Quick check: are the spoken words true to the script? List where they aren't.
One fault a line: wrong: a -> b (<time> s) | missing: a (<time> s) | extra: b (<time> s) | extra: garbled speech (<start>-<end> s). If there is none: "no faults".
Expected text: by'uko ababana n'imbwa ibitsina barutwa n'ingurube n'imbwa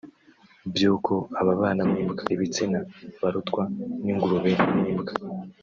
no faults